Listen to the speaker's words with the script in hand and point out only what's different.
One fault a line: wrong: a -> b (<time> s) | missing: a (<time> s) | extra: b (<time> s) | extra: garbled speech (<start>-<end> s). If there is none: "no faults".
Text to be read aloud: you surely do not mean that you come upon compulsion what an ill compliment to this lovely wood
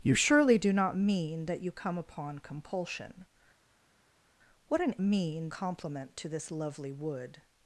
wrong: ill -> mean (5.0 s)